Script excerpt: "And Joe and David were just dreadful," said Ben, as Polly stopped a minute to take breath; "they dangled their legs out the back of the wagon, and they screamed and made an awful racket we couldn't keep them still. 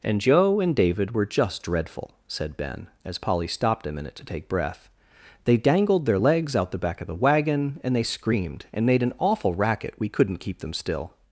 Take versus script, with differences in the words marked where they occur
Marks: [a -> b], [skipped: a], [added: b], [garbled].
"And Joe and David were just dreadful," said Ben, as Polly stopped a minute to take breath; "they dangled their legs out the back of the wagon, and they screamed and made an awful racket we couldn't keep them still.